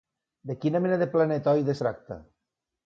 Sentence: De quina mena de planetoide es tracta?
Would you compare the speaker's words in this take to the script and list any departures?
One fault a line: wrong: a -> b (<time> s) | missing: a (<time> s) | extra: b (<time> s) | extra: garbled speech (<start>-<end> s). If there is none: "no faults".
missing: es (1.8 s)